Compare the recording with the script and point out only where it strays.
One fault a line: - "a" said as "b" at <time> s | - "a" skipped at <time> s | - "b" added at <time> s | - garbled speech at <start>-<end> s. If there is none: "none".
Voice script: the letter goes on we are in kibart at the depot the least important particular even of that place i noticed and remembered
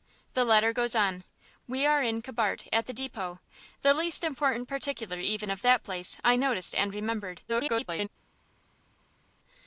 - garbled speech at 7.5-8.1 s